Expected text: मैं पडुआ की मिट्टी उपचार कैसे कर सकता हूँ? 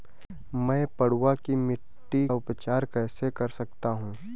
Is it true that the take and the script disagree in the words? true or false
false